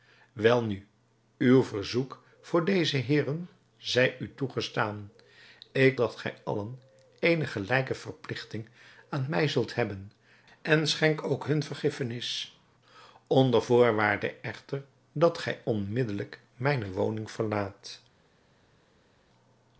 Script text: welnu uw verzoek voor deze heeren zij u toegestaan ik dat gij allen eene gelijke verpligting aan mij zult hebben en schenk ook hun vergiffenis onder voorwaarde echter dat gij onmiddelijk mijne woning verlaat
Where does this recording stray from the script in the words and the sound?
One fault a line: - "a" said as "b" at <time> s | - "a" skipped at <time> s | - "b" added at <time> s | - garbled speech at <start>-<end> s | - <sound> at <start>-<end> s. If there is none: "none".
none